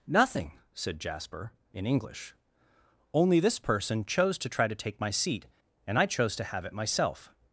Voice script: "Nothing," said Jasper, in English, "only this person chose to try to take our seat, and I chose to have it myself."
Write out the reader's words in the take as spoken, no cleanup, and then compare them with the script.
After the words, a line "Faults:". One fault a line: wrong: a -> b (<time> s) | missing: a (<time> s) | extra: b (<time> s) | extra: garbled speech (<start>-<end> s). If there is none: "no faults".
"Nothing," said Jasper, in English, "only this person chose to try to take my seat, and I chose to have it myself."
Faults:
wrong: our -> my (5.0 s)